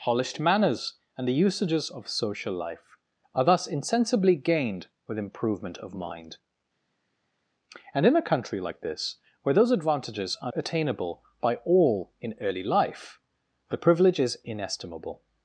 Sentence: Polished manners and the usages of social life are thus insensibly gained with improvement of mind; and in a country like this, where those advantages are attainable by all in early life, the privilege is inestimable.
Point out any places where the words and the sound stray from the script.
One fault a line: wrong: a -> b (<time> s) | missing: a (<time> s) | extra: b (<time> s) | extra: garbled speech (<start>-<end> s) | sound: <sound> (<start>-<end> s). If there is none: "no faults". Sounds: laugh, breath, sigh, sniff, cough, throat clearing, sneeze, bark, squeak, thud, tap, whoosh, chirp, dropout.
no faults